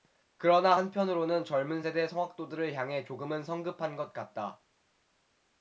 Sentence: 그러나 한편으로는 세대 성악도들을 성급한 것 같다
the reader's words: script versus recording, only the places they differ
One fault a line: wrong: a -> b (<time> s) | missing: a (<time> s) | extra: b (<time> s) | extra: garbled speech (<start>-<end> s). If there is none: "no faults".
extra: 젊은 (1.4 s)
extra: 향해 조금은 (2.7 s)